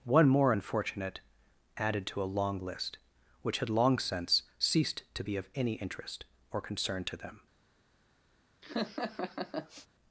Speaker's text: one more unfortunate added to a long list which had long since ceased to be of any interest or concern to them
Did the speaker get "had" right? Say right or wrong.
right